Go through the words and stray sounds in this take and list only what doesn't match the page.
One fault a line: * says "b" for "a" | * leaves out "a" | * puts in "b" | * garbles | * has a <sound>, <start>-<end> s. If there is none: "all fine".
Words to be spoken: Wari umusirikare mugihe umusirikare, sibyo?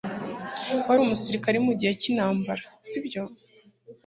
* says "cyintambara" for "umusirikare"